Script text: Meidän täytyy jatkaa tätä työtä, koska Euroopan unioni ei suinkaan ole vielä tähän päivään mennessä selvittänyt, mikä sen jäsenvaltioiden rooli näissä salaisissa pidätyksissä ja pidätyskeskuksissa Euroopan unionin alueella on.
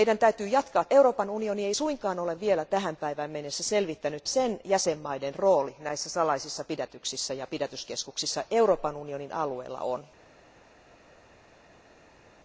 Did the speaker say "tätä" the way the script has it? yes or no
no